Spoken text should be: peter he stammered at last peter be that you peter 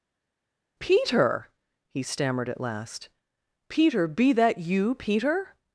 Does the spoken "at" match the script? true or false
true